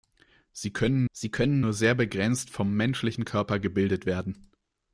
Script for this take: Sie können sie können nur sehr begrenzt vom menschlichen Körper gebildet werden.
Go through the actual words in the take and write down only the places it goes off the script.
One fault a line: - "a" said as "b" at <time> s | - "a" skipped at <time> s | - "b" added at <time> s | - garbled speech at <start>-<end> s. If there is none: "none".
none